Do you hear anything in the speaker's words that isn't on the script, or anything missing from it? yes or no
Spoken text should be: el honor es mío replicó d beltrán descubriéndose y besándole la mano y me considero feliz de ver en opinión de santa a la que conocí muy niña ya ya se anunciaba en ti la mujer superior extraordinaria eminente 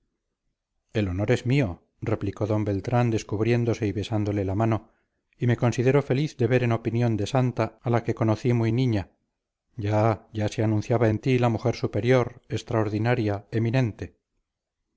no